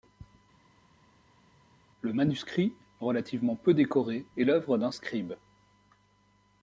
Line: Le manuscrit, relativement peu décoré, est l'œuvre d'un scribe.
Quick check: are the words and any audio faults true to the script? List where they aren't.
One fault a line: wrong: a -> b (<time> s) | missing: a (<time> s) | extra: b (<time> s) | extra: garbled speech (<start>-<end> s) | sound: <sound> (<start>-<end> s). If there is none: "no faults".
no faults